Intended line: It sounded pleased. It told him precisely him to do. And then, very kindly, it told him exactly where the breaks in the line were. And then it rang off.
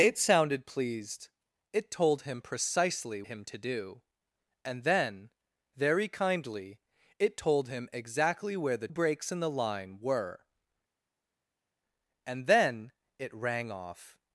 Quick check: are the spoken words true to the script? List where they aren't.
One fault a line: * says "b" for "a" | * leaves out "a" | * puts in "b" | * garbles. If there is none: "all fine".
all fine